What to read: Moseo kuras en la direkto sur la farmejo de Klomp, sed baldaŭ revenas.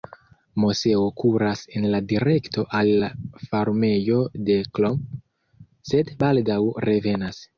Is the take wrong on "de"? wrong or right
right